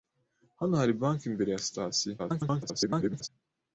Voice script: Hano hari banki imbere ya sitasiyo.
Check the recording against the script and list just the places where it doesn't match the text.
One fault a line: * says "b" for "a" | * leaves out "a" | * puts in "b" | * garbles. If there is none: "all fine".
* garbles